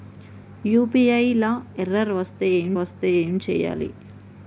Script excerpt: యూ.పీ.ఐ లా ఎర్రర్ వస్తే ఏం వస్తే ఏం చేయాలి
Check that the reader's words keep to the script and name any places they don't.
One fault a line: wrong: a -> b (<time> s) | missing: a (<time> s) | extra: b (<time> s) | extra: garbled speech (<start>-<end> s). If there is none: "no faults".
no faults